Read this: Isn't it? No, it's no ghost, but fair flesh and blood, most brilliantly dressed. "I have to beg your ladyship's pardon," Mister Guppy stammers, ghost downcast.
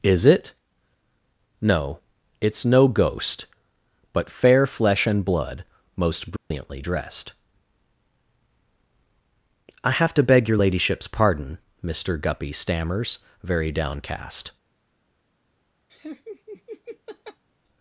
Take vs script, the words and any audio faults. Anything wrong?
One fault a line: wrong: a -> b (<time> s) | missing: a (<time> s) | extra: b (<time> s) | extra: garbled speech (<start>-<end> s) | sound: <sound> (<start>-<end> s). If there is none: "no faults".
wrong: Isn't -> Is (0.0 s)
sound: dropout (6.4-6.5 s)
wrong: ghost -> very (13.4 s)
sound: laugh (15.9-17.4 s)